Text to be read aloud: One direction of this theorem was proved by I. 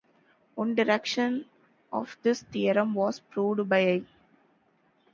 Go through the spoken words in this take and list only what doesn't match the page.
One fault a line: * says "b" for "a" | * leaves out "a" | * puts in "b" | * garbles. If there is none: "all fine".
all fine